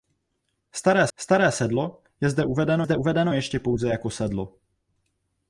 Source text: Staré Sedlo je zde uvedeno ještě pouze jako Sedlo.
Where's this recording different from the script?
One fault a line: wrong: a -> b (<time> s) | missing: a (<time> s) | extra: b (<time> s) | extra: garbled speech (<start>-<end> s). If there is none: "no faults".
extra: staré (1.2 s)
extra: zde uvedeno (2.8 s)